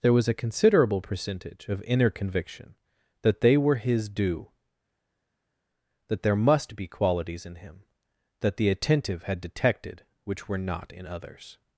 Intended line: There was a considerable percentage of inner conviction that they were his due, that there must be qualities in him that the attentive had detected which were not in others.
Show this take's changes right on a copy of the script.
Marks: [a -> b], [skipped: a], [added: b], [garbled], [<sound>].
There was a considerable percentage of inner conviction that they were his due, that there must be qualities in him that the attentive had detected which were not in others.